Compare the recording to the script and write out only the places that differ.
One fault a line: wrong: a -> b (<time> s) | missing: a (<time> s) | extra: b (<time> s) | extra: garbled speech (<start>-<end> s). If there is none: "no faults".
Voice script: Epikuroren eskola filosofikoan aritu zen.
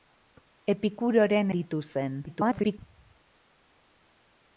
missing: eskola filosofikoan (1.5 s)
extra: garbled speech (2.3-2.8 s)